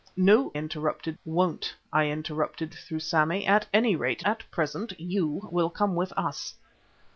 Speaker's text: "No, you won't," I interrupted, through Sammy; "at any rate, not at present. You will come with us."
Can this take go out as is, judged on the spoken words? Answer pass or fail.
fail